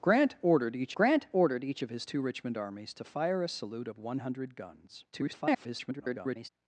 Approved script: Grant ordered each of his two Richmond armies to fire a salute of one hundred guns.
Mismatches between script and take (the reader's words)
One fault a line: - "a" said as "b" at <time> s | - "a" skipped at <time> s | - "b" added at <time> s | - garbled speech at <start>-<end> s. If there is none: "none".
- "grant ordered each" added at 0.9 s
- garbled speech at 5.1-6.5 s